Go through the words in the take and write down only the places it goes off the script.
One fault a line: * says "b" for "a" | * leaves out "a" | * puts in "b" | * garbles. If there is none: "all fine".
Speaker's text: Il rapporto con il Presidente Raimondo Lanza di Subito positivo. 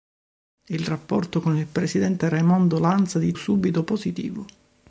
all fine